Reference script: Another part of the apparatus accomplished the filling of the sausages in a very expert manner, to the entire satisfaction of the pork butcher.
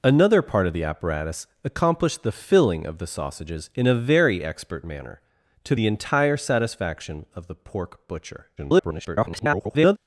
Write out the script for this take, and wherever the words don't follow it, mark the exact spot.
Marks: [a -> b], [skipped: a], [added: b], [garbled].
Another part of the apparatus accomplished the filling of the sausages in a very expert manner, to the entire satisfaction of the pork butcher. [garbled]